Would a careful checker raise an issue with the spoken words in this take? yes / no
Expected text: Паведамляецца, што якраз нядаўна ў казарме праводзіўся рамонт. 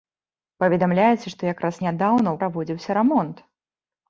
yes